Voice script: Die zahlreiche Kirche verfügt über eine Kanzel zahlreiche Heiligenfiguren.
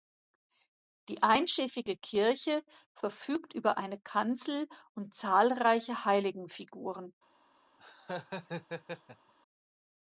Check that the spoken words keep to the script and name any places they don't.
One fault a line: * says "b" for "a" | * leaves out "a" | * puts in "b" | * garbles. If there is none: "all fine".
* says "einschiffige" for "zahlreiche"
* puts in "und"